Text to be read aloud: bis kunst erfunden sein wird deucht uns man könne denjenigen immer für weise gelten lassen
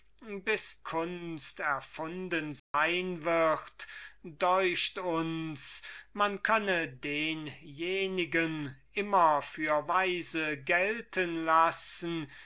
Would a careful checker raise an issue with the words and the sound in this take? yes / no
yes